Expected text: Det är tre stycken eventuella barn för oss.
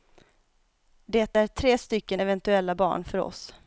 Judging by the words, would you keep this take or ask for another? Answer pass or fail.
pass